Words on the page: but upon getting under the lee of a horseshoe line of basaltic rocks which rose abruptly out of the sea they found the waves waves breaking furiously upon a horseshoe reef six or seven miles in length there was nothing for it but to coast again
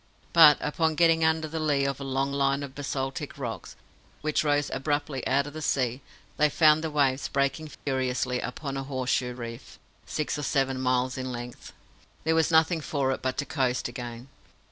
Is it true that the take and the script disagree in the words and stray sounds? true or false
true